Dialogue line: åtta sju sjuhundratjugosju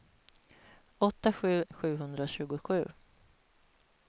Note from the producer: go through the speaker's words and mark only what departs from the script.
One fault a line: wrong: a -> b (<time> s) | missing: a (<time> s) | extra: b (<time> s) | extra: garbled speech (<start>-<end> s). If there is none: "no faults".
no faults